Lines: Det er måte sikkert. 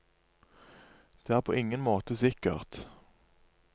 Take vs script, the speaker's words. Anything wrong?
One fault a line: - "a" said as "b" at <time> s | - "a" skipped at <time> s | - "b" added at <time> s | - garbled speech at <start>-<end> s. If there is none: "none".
- "på ingen" added at 1.4 s